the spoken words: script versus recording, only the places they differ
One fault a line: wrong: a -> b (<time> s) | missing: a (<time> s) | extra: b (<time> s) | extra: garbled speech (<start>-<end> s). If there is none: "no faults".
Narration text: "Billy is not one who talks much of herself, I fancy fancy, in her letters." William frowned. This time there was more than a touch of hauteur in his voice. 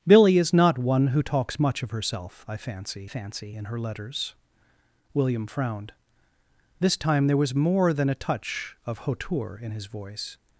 no faults